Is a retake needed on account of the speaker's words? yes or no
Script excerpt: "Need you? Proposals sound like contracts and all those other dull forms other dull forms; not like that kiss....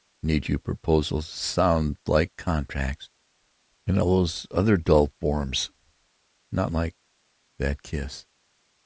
yes